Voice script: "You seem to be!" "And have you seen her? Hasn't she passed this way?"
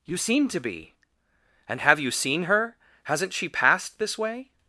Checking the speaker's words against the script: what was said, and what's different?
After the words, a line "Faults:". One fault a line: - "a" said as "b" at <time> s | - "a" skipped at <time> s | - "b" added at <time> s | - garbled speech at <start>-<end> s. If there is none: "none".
"You seem to be!" "And have you seen her? Hasn't she passed this way?"
Faults:
none